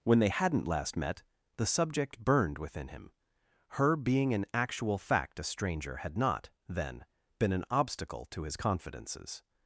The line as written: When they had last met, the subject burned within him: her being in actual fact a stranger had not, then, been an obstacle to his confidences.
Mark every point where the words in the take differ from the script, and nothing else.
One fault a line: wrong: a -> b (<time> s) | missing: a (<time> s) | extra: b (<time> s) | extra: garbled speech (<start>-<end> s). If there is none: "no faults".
wrong: had -> hadn't (0.3 s)